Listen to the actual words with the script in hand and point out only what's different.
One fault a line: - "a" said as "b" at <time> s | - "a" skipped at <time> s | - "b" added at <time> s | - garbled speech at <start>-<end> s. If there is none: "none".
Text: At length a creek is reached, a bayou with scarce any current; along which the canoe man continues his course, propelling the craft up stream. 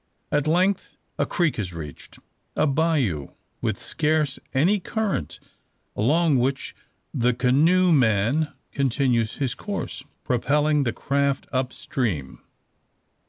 none